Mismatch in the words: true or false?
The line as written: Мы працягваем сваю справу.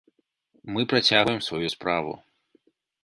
false